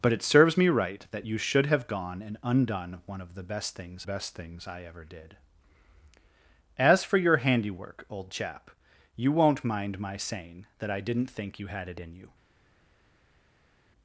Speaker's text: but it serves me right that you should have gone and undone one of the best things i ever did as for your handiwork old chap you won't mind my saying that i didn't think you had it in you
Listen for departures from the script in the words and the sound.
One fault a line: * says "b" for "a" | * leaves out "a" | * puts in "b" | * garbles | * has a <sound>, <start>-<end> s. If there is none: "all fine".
* puts in "best things"